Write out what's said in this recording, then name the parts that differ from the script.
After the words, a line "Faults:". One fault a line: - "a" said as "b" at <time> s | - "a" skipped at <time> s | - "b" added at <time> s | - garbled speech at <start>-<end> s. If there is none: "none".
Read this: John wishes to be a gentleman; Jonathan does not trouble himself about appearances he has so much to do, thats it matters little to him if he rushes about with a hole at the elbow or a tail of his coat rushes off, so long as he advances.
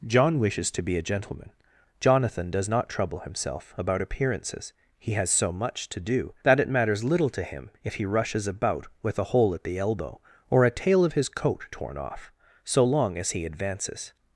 John wishes to be a gentleman; Jonathan does not trouble himself about appearances he has so much to do, that it matters little to him if he rushes about with a hole at the elbow or a tail of his coat torn off, so long as he advances.
Faults:
- "thats" said as "that" at 6.4 s
- "rushes" said as "torn" at 11.7 s